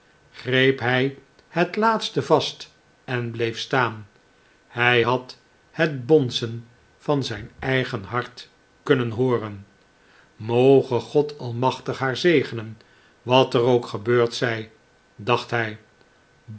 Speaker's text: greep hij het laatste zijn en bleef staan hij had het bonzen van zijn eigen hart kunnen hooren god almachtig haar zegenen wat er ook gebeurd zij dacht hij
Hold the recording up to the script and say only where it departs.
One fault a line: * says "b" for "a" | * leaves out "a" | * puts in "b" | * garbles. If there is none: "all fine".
* says "vast" for "zijn"
* puts in "moge"